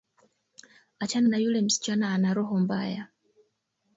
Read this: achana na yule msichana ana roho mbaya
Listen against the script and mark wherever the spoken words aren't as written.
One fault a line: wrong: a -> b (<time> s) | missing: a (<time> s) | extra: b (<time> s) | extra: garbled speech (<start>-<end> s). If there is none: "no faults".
no faults